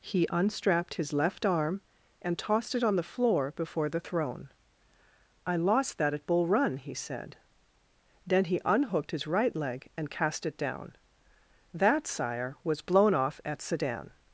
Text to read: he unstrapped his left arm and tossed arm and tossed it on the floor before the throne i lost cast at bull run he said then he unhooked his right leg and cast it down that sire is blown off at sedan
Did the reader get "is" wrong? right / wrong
wrong